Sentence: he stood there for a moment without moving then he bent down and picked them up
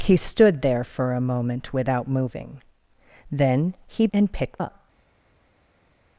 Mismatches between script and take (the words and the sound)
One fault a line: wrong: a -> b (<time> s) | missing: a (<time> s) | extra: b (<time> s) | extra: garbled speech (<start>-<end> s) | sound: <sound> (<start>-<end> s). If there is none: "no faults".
missing: bent down (4.1 s)
missing: them (4.6 s)